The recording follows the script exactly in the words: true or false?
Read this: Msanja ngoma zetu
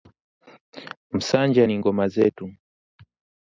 false